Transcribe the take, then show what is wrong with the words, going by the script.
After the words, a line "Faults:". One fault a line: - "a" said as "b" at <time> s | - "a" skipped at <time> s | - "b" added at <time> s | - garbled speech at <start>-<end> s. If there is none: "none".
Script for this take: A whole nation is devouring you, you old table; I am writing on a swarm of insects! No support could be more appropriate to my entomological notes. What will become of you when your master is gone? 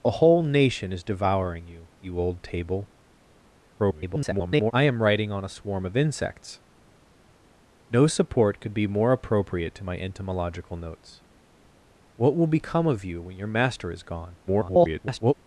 A whole nation is devouring you, you old table; [garbled] I am writing on a swarm of insects! No support could be more appropriate to my entomological notes. What will become of you when your master is gone? [garbled]
Faults:
- garbled speech at 3.8-4.7 s
- garbled speech at 14.5-15.3 s